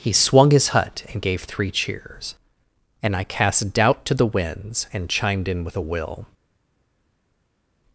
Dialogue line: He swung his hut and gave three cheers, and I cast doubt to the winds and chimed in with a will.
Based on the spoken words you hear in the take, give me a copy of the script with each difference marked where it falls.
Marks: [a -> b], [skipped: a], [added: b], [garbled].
He swung his hut and gave three cheers, and I cast doubt to the winds and chimed in with a will.